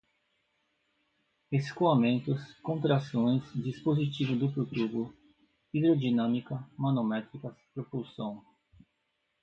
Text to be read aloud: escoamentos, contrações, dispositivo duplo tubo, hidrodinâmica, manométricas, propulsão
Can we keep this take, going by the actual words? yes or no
yes